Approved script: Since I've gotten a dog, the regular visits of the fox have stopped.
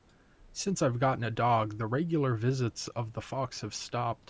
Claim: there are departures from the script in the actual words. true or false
false